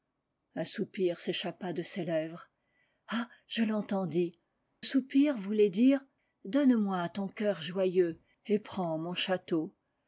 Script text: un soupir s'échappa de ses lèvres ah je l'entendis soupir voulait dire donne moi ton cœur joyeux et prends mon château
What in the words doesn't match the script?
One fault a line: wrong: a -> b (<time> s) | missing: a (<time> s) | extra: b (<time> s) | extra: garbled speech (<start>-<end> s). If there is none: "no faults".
no faults